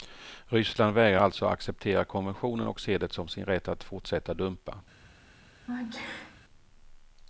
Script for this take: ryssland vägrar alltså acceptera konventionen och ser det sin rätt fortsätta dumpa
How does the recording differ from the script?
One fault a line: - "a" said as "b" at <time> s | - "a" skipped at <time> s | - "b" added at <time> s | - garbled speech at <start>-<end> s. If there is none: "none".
- "som" added at 3.1 s
- "att" added at 3.7 s